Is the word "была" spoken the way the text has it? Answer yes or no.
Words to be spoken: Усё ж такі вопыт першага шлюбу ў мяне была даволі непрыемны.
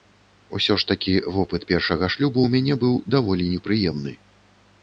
no